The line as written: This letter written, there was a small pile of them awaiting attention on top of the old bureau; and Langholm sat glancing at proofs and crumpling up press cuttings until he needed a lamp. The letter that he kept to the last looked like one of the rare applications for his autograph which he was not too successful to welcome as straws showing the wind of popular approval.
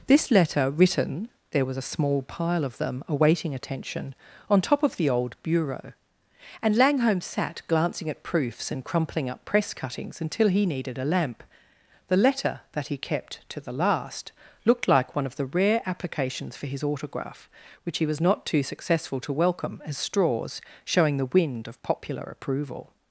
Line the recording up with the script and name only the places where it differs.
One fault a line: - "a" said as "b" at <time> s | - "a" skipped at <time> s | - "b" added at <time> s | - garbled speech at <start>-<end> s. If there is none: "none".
none